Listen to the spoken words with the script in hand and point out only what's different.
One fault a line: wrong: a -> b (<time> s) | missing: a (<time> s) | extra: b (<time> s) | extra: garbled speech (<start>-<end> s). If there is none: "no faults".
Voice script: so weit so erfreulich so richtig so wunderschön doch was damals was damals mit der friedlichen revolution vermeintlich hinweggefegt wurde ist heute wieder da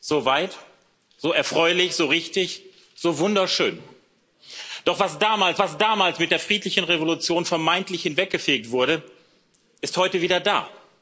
no faults